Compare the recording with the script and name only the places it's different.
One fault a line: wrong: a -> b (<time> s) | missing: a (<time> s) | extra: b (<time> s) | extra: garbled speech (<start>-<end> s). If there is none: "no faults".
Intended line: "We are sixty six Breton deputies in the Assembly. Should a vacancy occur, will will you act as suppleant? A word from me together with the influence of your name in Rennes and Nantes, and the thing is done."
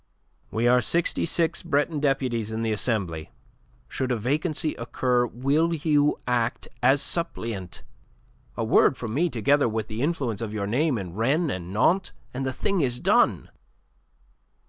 missing: will (5.8 s)